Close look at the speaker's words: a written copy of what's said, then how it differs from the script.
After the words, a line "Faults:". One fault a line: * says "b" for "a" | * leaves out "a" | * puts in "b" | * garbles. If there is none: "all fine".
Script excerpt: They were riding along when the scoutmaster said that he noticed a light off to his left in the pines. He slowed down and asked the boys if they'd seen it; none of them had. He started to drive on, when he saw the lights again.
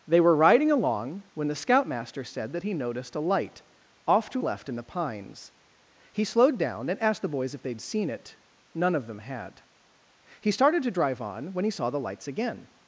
They were riding along when the scoutmaster said that he noticed a light off to left in the pines. He slowed down and asked the boys if they'd seen it; none of them had. He started to drive on, when he saw the lights again.
Faults:
* leaves out "his"